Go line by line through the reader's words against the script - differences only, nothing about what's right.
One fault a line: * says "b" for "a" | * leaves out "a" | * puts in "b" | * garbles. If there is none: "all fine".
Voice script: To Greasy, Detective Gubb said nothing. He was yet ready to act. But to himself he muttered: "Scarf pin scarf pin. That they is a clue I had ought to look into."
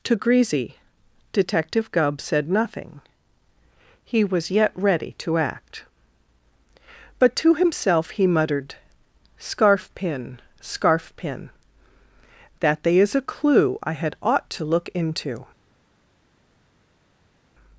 all fine